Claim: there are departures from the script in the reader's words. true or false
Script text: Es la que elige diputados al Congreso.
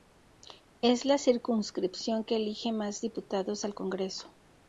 true